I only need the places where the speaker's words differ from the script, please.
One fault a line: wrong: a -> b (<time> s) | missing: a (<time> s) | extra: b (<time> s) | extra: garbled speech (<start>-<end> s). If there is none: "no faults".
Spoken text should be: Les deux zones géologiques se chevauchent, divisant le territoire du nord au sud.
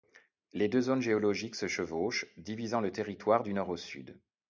no faults